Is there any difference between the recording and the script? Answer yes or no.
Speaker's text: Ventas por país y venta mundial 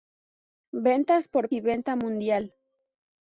yes